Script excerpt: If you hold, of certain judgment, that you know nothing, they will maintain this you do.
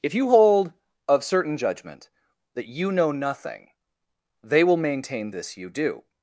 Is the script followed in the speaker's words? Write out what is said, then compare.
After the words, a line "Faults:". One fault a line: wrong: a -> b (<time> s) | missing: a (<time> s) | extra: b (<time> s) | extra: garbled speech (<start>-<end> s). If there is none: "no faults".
If you hold, of certain judgment, that you know nothing, they will maintain this you do.
Faults:
no faults